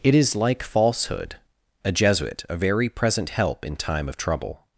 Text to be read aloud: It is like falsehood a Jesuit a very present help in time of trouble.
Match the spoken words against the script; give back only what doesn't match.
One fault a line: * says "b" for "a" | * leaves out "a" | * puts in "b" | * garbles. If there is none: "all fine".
all fine